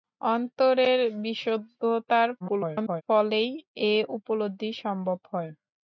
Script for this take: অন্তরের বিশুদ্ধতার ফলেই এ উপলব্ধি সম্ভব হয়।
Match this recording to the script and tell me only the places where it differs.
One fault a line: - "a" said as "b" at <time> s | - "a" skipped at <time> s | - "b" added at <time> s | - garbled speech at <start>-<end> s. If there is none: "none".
- garbled speech at 2.4-3.0 s